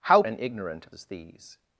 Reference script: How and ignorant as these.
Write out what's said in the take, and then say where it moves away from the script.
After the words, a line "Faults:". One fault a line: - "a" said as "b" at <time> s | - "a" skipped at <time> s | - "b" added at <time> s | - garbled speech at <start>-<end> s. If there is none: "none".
How and ignorant as these.
Faults:
none